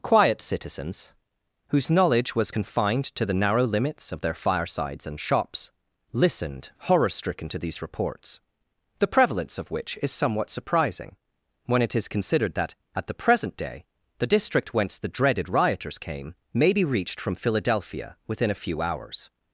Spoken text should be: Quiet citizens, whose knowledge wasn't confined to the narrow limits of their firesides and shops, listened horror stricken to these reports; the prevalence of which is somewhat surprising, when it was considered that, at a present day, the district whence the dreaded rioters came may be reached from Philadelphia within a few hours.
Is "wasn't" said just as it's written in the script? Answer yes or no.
no